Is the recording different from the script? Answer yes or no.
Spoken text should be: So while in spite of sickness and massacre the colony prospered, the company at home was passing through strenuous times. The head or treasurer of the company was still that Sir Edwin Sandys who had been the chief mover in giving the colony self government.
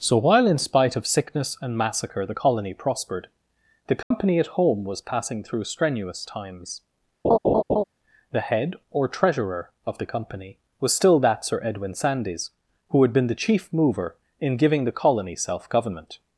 no